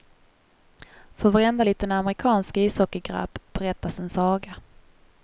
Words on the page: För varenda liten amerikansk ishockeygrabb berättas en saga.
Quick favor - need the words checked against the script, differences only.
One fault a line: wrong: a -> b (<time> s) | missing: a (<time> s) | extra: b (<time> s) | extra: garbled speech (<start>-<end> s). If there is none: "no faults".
no faults